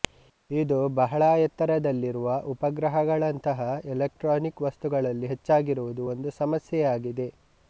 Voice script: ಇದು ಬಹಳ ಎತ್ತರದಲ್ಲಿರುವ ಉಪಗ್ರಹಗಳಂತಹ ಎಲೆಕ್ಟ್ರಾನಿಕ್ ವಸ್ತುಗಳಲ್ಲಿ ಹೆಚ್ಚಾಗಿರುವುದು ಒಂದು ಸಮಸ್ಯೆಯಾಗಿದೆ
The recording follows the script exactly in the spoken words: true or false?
true